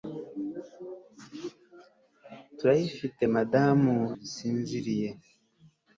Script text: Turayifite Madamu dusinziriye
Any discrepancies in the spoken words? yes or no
no